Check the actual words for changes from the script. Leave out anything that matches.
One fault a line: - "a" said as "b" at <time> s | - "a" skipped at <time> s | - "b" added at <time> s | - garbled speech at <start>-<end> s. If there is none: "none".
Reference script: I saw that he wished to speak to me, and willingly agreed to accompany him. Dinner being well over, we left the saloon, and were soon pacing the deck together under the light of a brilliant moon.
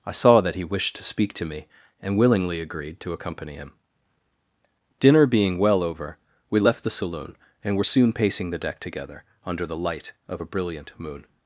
none